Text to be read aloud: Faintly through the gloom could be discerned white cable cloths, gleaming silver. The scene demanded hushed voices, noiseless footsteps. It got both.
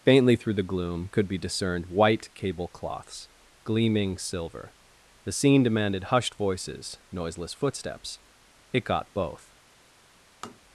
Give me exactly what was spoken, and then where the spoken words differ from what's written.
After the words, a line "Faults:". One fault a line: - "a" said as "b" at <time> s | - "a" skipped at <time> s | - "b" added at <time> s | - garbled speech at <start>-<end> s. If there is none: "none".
Faintly through the gloom could be discerned white cable cloths, gleaming silver. The scene demanded hushed voices, noiseless footsteps. It got both.
Faults:
none